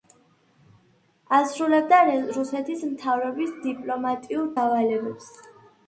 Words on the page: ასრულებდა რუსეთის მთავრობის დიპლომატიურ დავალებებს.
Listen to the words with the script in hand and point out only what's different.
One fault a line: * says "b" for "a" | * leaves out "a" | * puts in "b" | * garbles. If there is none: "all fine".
all fine